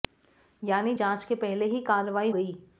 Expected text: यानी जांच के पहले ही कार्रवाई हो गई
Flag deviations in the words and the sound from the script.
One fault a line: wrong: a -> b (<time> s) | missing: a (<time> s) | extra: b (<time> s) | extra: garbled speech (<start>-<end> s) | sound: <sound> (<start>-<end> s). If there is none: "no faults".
missing: हो (2.3 s)